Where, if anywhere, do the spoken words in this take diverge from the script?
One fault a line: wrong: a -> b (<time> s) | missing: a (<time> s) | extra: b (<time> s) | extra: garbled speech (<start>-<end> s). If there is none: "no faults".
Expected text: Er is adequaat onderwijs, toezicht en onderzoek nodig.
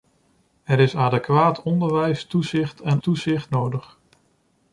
wrong: onderzoek -> toezicht (3.0 s)